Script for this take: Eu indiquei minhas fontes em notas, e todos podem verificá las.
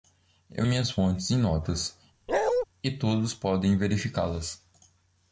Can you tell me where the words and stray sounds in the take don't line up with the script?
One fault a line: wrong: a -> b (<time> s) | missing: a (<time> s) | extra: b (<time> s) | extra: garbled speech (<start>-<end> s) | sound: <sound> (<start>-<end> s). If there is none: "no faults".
missing: indiquei (0.7 s)
sound: bark (2.3-2.7 s)